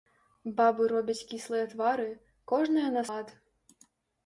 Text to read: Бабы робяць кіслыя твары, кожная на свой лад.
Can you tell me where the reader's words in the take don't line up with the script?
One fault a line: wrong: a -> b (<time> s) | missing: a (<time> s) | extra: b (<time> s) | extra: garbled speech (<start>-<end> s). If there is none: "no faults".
missing: свой (3.0 s)